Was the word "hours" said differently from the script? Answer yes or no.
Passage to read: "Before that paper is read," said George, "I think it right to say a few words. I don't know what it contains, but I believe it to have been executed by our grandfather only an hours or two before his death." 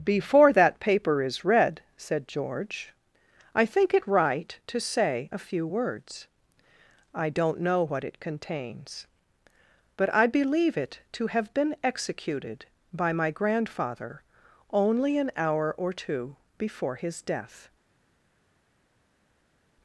yes